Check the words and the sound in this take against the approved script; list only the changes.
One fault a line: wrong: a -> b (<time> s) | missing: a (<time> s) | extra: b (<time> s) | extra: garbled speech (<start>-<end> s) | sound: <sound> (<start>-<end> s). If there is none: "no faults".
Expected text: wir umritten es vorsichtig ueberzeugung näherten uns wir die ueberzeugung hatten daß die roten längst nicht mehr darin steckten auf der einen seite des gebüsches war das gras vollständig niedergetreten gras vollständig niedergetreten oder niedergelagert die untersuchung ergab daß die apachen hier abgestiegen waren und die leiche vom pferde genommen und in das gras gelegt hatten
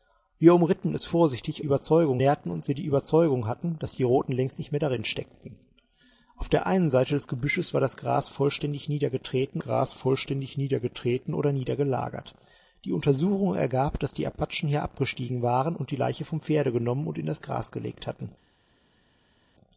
no faults